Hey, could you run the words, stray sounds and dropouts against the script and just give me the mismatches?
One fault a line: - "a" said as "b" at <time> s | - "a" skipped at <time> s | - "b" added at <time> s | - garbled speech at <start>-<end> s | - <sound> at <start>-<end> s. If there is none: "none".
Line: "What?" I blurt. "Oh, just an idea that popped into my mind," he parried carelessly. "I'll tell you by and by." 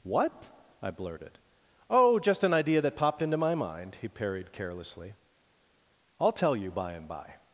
- "blurt" said as "blurted" at 0.9 s